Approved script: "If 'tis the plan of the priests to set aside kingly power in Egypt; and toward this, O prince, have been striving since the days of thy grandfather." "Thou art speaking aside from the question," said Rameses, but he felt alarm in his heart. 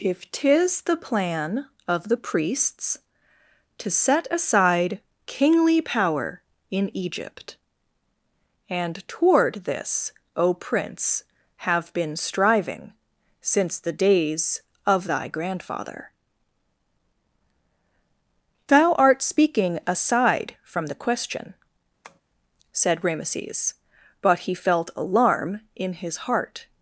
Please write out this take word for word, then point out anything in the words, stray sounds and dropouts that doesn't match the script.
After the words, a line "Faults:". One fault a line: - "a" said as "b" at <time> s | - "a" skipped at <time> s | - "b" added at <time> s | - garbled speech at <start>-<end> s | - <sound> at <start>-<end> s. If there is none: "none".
"If 'tis the plan of the priests to set aside kingly power in Egypt; and toward this, O prince, have been striving since the days of thy grandfather." "Thou art speaking aside from the question," said Rameses, but he felt alarm in his heart.
Faults:
- tap at 22.0-22.2 s